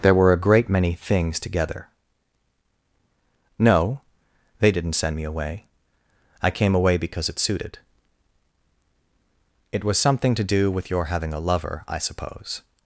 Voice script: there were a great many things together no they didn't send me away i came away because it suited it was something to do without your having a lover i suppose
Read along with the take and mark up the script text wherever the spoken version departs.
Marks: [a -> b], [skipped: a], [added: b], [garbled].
there were a great many things together no they didn't send me away i came away because it suited it was something to do [without -> with] your having a lover i suppose